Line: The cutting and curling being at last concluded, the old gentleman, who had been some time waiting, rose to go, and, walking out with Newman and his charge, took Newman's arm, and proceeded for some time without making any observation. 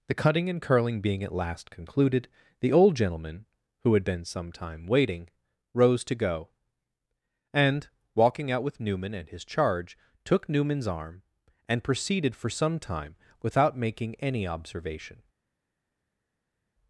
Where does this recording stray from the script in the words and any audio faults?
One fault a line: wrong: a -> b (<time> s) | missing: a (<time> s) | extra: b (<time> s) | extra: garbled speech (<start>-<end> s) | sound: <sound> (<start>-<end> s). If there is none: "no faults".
no faults